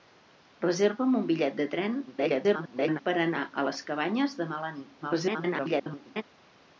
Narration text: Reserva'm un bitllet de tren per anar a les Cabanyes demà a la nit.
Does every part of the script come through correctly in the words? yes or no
no